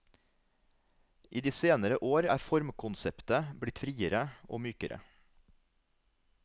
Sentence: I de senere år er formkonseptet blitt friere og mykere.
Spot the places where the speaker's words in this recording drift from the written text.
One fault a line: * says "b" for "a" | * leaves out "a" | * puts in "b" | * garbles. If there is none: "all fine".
all fine